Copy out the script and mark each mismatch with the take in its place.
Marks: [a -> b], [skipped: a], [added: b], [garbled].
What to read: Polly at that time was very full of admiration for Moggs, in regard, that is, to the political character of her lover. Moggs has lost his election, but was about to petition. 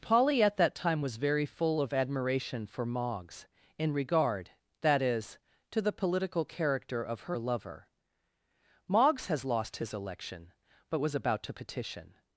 Polly at that time was very full of admiration for Moggs, in regard, that is, to the political character of her lover. Moggs has lost his election, but was about to petition.